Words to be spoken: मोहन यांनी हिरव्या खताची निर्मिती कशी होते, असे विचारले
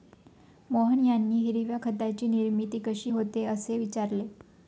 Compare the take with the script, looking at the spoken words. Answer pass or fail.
pass